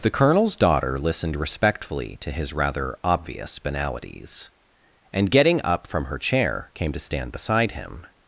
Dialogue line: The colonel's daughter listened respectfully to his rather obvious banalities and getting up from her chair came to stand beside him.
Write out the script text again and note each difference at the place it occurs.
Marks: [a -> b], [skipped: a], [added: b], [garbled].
The colonel's daughter listened respectfully to his rather obvious banalities and getting up from her chair came to stand beside him.